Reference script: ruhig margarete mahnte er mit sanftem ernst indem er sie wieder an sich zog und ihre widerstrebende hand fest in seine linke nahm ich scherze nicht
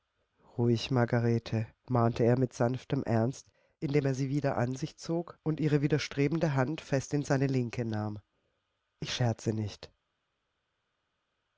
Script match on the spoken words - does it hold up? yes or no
yes